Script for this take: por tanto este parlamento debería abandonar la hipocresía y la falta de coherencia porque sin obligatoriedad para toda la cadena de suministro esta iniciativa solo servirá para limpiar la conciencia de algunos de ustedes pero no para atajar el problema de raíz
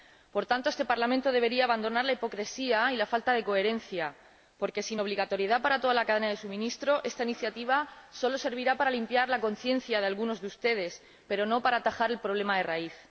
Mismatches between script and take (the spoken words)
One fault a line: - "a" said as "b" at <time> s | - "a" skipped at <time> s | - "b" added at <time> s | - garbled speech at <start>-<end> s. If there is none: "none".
none